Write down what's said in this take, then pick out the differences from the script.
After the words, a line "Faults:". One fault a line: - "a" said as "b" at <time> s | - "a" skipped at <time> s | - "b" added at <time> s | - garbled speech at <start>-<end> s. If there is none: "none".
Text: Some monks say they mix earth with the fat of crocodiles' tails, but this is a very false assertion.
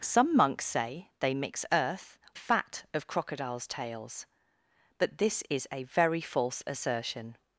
Some monks say they mix earth fat of crocodiles' tails, but this is a very false assertion.
Faults:
- "with the" skipped at 2.2 s